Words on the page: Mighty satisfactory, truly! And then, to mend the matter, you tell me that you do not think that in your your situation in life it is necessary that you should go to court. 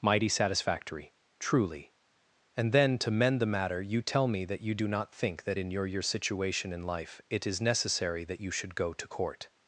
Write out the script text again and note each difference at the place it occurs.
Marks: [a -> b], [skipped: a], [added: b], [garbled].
Mighty satisfactory, truly! And then, to mend the matter, you tell me that you do not think that in your your situation in life it is necessary that you should go to court.